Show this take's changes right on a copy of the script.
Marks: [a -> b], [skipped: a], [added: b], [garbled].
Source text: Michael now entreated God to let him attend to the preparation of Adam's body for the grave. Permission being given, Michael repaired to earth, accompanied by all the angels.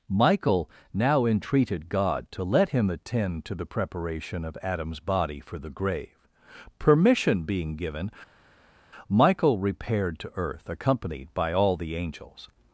Michael now entreated God to let him attend to the preparation of Adam's body for the grave. Permission being given, Michael repaired to earth, accompanied by all the angels.